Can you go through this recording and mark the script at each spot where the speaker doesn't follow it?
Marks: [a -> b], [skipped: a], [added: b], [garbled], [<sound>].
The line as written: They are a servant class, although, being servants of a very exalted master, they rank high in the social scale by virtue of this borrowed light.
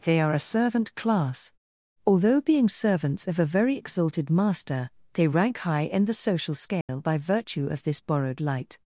They are a servant class, although, being servants of a very exalted master, they rank high in the social scale [dropout] by virtue of this borrowed light.